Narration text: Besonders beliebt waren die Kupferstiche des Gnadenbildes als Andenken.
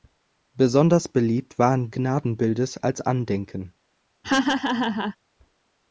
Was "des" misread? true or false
true